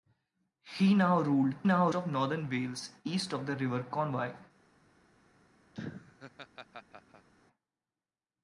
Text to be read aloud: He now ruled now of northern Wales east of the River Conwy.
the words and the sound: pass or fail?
fail